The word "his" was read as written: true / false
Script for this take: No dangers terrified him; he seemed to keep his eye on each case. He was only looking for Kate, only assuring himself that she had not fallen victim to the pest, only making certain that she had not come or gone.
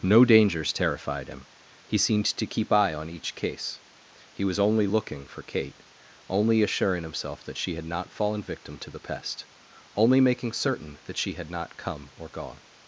false